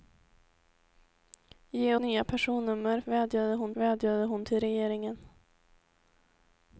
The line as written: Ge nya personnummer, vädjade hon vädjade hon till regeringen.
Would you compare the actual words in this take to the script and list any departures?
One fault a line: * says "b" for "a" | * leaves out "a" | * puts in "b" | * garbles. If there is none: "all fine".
all fine